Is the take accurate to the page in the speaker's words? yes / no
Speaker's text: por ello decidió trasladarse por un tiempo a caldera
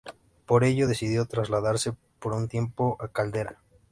yes